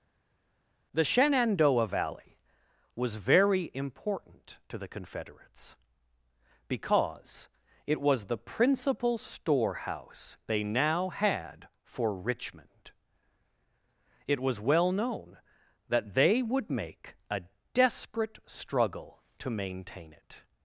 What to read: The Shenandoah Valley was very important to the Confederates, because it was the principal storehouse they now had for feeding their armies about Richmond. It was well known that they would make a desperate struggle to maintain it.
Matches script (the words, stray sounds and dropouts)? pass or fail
fail